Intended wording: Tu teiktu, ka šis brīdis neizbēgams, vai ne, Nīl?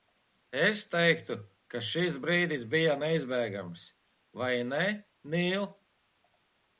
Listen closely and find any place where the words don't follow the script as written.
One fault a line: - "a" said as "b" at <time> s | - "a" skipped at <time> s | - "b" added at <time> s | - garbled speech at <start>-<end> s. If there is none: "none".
- "Tu" said as "Es" at 0.6 s
- "bija" added at 2.7 s